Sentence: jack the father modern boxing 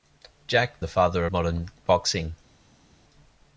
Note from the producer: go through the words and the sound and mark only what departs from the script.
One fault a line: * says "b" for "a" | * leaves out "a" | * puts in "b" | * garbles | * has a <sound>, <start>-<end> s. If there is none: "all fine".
all fine